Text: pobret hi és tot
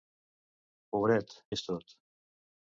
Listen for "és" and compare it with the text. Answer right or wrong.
right